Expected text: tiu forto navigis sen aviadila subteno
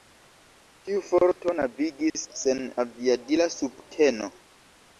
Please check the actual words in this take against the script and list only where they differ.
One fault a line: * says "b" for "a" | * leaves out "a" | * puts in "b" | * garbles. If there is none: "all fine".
all fine